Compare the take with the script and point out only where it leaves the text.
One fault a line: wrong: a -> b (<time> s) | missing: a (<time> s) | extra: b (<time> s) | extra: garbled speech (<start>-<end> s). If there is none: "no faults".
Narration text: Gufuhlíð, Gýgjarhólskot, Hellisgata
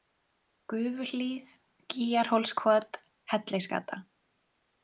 no faults